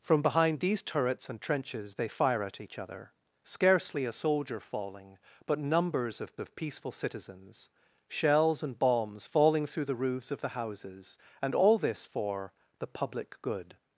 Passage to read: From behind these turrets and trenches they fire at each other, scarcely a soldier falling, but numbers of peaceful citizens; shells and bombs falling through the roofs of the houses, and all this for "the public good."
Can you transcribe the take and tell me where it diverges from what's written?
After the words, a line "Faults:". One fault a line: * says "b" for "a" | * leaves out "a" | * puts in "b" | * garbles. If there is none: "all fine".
From behind these turrets and trenches they fire at each other, scarcely a soldier falling, but numbers of of peaceful citizens; shells and bombs falling through the roofs of the houses, and all this for "the public good."
Faults:
* puts in "of"